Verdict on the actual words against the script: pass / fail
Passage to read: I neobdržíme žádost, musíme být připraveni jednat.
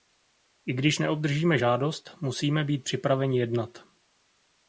fail